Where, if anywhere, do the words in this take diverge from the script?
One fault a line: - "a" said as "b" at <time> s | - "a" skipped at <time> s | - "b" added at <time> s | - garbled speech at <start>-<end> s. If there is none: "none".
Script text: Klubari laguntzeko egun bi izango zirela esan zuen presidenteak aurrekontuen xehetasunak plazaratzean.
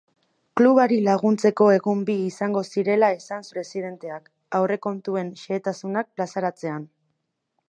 - "zuen" skipped at 3.5 s